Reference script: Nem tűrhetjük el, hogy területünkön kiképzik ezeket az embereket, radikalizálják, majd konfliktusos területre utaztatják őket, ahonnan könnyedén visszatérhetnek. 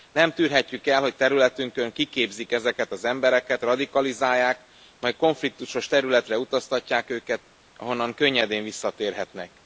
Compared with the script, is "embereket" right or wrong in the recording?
right